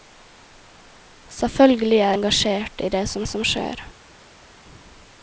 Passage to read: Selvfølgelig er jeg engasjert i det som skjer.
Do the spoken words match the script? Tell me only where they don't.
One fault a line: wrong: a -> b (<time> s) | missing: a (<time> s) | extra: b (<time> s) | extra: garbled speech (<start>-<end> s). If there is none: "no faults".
missing: jeg (2.1 s)
extra: som (3.3 s)